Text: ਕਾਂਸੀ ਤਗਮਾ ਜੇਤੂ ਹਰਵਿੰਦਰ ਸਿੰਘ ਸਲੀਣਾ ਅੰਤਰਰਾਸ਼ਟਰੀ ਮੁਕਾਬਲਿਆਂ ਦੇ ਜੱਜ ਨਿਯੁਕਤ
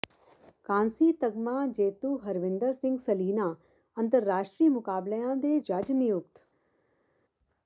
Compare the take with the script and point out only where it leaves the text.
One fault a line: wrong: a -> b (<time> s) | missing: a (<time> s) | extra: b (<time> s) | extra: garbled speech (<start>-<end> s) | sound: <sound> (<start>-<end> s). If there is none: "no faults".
no faults